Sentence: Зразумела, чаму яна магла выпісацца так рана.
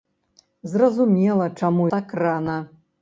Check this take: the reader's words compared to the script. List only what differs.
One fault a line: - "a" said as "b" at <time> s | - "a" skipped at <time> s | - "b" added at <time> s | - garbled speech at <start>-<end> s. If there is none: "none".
- "яна магла выпісацца" skipped at 1.9 s